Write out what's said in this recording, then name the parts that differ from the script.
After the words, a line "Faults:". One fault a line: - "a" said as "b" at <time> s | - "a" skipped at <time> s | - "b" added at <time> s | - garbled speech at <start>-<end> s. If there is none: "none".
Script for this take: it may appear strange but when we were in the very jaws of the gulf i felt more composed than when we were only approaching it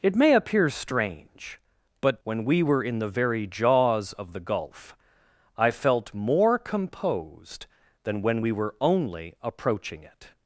it may appear strange but when we were in the very jaws of the gulf i felt more composed than when we were only approaching it
Faults:
none